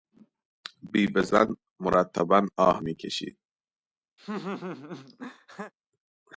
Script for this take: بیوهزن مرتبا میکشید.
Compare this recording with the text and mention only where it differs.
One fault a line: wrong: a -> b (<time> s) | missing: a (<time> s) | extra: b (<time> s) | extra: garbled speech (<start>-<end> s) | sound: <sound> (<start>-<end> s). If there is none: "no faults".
extra: آه (2.6 s)
sound: laugh (4.2-5.7 s)